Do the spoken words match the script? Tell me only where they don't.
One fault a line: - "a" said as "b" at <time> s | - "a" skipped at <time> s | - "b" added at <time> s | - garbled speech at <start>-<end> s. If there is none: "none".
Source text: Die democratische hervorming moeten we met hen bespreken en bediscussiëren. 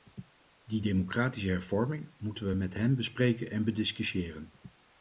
none